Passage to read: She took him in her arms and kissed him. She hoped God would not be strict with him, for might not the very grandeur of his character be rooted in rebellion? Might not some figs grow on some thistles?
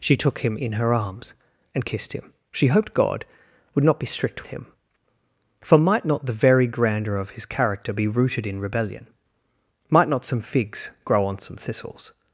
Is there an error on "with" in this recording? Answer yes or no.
yes